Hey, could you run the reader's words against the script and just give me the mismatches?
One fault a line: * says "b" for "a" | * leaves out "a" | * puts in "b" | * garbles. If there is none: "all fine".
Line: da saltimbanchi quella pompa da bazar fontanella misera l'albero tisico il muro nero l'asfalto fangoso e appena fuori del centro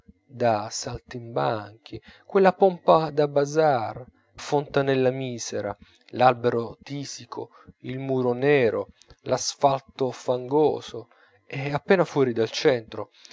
all fine